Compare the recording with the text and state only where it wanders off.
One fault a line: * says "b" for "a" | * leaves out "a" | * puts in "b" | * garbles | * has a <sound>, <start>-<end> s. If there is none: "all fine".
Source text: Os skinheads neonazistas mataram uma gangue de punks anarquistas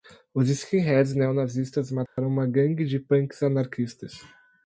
* has a dropout, 2.1-2.2 s